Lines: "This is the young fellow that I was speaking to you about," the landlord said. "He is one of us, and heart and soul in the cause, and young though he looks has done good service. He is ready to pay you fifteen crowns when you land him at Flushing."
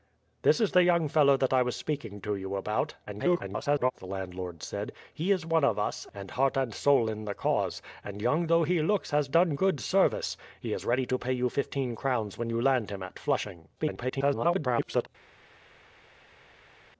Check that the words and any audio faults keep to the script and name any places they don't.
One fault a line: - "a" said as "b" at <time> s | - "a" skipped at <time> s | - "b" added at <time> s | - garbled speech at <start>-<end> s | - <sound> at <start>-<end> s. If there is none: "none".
- garbled speech at 3.1-3.9 s
- garbled speech at 13.8-15.1 s